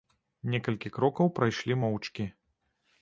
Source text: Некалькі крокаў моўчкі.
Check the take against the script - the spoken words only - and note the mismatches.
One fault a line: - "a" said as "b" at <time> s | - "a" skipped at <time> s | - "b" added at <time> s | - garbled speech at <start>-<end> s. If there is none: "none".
- "прайшлі" added at 1.4 s